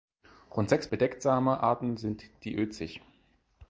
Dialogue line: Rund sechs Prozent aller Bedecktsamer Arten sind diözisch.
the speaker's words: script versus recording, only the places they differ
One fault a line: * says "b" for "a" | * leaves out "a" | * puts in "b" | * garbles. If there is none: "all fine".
* leaves out "Prozent aller"